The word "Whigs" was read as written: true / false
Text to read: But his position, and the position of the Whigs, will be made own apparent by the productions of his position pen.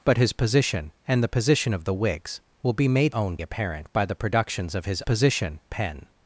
true